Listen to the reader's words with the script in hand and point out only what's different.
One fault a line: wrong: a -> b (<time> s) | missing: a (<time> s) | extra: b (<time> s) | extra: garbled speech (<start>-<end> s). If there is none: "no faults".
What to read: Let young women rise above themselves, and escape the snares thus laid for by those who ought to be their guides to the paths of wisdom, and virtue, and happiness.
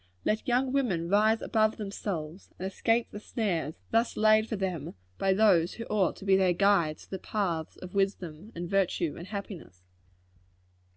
extra: them (4.6 s)